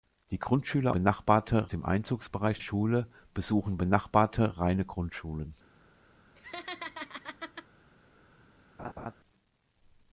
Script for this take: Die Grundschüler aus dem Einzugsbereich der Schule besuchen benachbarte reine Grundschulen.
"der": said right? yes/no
no